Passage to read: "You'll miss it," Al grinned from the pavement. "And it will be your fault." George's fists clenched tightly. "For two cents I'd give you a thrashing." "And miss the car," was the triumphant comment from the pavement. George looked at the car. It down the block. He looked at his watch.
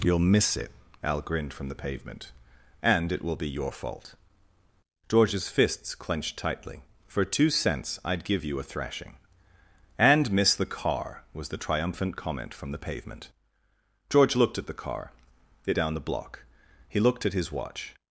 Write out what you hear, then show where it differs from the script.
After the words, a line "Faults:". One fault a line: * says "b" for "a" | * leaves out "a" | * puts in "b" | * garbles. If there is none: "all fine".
"You'll miss it," Al grinned from the pavement. "And it will be your fault." George's fists clenched tightly. "For two cents I'd give you a thrashing." "And miss the car," was the triumphant comment from the pavement. George looked at the car. It down the block. He looked at his watch.
Faults:
all fine